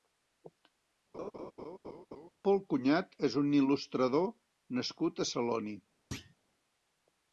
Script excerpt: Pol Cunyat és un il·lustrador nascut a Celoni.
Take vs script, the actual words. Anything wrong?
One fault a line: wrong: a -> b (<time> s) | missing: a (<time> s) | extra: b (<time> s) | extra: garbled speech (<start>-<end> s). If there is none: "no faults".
no faults